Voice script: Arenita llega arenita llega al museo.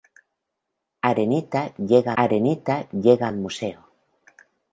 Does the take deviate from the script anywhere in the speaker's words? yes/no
no